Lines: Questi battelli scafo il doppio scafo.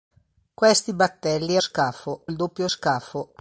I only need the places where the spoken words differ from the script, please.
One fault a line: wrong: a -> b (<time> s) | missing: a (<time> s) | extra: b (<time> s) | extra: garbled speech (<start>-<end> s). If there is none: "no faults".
no faults